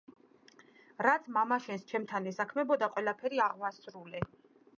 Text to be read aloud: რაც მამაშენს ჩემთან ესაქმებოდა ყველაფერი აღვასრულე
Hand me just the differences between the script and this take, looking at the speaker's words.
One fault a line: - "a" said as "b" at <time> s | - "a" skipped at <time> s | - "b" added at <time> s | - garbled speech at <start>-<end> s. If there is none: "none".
none